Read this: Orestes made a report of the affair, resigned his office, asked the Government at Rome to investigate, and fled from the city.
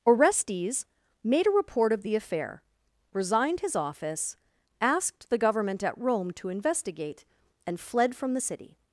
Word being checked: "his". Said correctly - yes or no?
yes